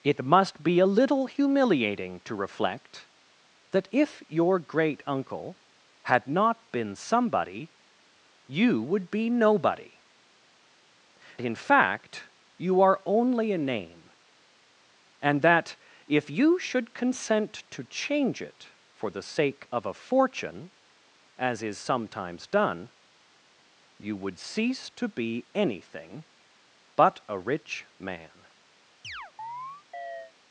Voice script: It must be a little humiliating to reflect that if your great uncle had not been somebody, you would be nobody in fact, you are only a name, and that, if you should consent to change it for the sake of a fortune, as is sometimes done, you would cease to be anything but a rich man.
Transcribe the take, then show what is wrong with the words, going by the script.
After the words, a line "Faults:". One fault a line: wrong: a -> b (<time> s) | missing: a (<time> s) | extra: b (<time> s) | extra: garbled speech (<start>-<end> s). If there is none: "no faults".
It must be a little humiliating to reflect that if your great uncle had not been somebody, you would be nobody in fact, you are only a name, and that, if you should consent to change it for the sake of a fortune, as is sometimes done, you would cease to be anything but a rich man.
Faults:
no faults